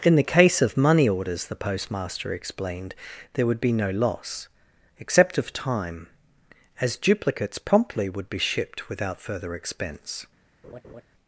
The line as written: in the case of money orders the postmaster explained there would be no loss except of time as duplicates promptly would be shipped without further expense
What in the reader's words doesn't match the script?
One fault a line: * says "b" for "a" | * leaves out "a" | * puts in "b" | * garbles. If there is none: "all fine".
all fine